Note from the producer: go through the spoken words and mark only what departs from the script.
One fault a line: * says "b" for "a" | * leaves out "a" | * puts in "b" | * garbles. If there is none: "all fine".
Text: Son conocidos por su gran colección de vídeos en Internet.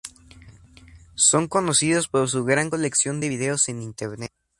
all fine